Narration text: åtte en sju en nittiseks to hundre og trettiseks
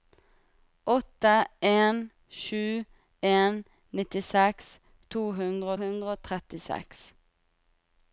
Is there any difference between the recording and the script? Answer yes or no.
yes